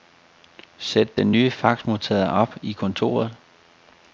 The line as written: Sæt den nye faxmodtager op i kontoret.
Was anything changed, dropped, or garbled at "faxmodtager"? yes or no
no